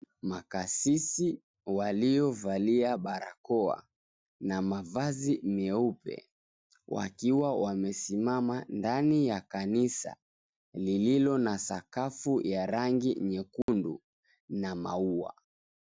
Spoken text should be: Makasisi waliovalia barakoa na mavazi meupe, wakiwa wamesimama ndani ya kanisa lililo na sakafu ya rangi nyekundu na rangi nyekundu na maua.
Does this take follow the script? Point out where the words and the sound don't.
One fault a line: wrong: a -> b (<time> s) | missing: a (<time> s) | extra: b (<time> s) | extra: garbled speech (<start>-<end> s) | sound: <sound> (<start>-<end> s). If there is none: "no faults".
sound: dropout (13.6-13.7 s)
missing: rangi nyekundu na (14.8 s)